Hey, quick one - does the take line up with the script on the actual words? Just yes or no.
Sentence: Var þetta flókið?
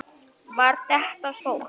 yes